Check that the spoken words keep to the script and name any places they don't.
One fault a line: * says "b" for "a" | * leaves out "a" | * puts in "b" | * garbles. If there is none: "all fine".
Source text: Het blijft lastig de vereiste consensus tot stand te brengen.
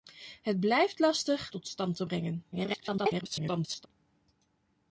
* leaves out "de vereiste consensus"
* garbles